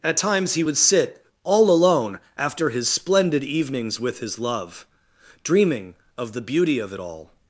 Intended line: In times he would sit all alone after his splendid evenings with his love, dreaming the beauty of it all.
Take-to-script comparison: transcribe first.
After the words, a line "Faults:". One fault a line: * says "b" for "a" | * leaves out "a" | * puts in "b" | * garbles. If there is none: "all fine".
At times he would sit all alone after his splendid evenings with his love, dreaming of the beauty of it all.
Faults:
* says "At" for "In"
* puts in "of"